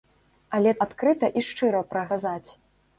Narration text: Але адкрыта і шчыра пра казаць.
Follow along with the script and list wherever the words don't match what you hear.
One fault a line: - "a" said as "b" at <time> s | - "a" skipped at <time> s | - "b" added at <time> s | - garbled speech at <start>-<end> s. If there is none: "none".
none